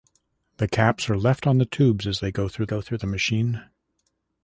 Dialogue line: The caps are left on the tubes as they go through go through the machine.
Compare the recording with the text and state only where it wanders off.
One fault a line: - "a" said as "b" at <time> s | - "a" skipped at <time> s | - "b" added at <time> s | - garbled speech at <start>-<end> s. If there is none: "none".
none